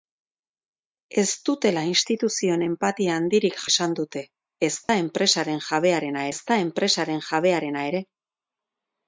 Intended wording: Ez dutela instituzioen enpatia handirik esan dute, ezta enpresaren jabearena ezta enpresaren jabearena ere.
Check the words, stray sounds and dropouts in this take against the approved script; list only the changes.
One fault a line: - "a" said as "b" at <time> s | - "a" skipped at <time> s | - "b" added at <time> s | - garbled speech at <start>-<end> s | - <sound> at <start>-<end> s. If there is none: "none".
- dropout at 4.8-4.9 s